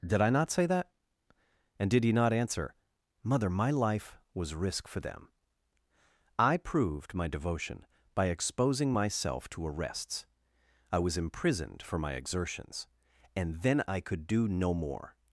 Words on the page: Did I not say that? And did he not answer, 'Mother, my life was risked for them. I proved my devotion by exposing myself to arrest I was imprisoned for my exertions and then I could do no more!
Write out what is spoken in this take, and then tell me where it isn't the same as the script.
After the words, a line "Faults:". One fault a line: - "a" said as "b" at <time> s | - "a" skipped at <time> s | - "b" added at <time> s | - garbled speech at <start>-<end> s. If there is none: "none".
Did I not say that? And did he not answer, 'Mother, my life was risk for them. I proved my devotion by exposing myself to arrests I was imprisoned for my exertions and then I could do no more!
Faults:
- "risked" said as "risk" at 4.5 s
- "arrest" said as "arrests" at 9.7 s